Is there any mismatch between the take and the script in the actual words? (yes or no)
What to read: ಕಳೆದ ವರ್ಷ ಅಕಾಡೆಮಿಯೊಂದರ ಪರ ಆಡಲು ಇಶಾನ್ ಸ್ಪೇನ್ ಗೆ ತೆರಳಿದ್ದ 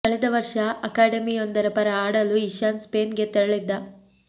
no